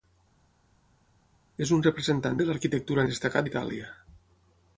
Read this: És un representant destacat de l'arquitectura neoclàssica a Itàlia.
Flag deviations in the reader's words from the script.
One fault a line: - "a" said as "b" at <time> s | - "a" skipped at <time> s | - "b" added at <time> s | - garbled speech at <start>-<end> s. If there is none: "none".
- "destacat" skipped at 2.4 s
- "neoclàssica" said as "destacat" at 3.1 s